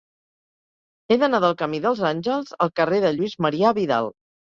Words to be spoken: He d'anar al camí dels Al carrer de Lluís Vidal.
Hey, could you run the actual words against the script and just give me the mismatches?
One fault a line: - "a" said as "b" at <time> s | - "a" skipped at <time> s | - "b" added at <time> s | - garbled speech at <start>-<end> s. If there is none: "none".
- "al" said as "del" at 1.4 s
- "Àngels" added at 2.1 s
- "Marià" added at 3.5 s